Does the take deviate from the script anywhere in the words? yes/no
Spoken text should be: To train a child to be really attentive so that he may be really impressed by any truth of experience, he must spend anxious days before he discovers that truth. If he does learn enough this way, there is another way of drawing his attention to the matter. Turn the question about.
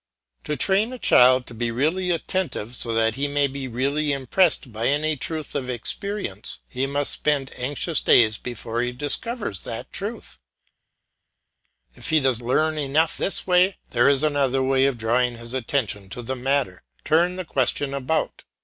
no